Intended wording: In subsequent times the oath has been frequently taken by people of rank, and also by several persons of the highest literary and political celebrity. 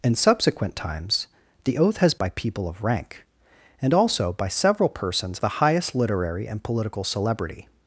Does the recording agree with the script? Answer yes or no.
no